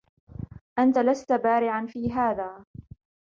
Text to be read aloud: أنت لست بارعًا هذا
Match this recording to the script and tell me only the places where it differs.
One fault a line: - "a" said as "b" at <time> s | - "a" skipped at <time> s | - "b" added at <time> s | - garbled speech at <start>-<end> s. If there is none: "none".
- "في" added at 1.9 s